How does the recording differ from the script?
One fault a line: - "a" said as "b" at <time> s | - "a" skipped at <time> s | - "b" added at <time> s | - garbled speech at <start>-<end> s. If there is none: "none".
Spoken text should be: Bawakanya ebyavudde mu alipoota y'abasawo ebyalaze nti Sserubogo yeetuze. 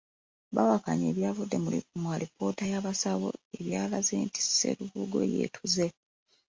none